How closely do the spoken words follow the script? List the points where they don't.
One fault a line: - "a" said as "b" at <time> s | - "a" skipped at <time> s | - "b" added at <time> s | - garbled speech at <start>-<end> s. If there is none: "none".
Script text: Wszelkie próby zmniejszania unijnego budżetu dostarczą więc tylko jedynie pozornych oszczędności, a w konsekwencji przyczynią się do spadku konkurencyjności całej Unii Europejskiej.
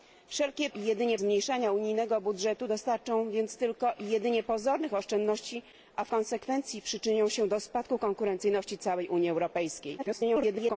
- "próby" said as "jedynie" at 0.8 s
- garbled speech at 10.0-10.8 s